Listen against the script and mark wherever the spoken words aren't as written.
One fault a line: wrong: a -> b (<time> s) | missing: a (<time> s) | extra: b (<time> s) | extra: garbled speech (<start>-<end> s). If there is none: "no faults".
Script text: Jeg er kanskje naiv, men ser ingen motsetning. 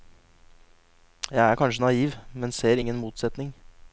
no faults